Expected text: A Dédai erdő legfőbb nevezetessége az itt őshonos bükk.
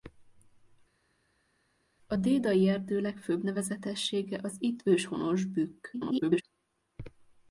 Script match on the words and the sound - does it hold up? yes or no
no